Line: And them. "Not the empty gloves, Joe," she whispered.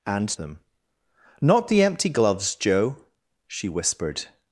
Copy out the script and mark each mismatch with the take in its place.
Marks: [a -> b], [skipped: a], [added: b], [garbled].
And them. "Not the empty gloves, Joe," she whispered.